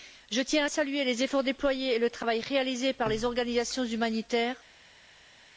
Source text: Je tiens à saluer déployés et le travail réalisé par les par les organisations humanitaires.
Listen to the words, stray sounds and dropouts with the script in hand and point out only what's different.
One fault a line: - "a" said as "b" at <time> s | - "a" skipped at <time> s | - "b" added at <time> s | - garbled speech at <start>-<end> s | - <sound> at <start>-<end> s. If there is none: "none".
- "les efforts" added at 1.0 s
- "par les" skipped at 3.2 s